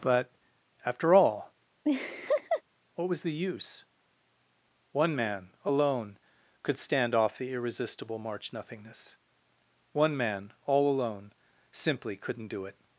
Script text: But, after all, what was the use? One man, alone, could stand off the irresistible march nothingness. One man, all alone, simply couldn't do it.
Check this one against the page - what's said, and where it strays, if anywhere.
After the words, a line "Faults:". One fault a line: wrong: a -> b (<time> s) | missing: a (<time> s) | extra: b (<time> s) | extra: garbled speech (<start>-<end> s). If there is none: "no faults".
But, after all, what was the use? One man, alone, could stand off the irresistible march nothingness. One man, all alone, simply couldn't do it.
Faults:
no faults